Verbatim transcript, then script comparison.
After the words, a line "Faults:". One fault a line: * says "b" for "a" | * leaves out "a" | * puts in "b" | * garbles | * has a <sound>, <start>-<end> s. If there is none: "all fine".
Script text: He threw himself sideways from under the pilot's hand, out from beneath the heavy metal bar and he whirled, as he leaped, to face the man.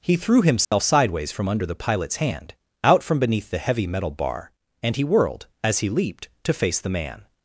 He threw himself sideways from under the pilot's hand, out from beneath the heavy metal bar and he whirled, as he leaped, to face the man.
Faults:
* has a dropout, 0.6-0.7 s